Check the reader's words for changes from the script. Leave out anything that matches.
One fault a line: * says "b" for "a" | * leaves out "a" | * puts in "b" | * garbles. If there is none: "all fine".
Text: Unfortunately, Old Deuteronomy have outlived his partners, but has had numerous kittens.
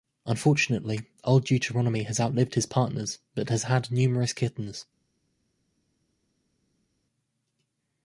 * says "has" for "have"